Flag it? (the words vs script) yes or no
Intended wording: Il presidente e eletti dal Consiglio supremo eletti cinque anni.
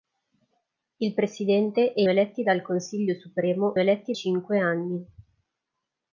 no